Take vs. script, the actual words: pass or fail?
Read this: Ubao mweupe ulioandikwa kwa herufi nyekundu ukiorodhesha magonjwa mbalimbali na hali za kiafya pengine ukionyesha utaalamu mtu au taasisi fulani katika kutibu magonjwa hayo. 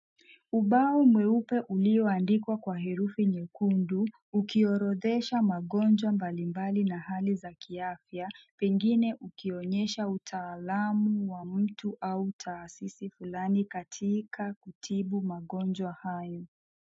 fail